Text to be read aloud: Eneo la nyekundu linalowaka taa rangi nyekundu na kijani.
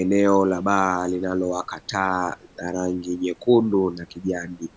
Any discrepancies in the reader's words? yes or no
yes